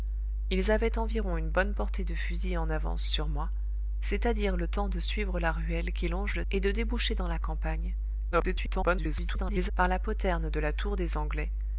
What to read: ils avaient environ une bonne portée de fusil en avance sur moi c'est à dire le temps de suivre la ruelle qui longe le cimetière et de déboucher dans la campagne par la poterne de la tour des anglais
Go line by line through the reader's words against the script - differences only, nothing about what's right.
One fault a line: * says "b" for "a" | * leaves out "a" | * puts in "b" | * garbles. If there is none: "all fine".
* leaves out "cimetière"
* garbles